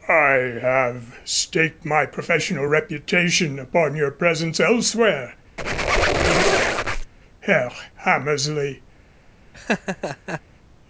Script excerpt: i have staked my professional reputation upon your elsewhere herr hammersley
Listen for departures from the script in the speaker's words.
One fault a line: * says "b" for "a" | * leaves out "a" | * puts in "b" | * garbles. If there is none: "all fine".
* puts in "presence"